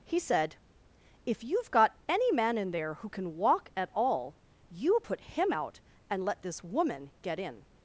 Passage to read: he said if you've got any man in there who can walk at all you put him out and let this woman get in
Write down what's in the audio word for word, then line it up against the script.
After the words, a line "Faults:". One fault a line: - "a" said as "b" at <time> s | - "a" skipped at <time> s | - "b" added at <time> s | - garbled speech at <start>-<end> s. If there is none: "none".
he said if you've got any man in there who can walk at all you put him out and let this woman get in
Faults:
none